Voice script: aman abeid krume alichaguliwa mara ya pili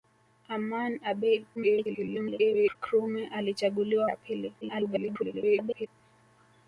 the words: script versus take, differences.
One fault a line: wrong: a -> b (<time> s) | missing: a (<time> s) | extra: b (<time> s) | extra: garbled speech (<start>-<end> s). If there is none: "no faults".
extra: garbled speech (1.5-2.8 s)
missing: mara (4.1 s)
extra: garbled speech (4.6-5.9 s)